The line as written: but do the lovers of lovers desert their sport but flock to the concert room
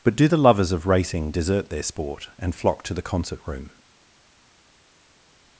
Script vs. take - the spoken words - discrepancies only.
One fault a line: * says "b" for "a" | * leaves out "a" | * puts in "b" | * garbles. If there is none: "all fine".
* says "racing" for "lovers"
* says "and" for "but"